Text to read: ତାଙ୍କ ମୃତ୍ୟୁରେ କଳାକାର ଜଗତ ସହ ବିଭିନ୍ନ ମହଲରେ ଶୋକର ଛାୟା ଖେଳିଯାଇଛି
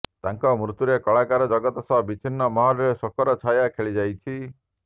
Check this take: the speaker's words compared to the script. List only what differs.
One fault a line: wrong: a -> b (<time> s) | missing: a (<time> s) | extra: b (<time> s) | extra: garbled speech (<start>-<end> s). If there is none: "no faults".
no faults